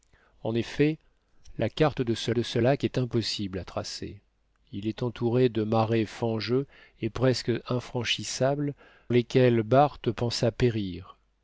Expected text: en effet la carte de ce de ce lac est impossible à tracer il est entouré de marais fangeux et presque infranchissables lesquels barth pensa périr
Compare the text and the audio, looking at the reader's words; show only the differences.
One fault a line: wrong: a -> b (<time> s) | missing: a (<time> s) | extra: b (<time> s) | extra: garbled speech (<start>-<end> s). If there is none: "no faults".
no faults